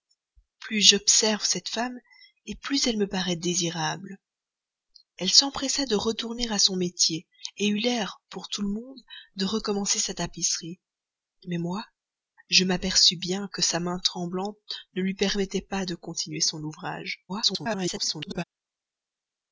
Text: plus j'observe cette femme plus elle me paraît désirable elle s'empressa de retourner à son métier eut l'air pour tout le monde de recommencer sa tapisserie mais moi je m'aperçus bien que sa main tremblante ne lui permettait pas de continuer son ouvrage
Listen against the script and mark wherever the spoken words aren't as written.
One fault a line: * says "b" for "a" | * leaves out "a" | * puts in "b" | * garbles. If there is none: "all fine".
* garbles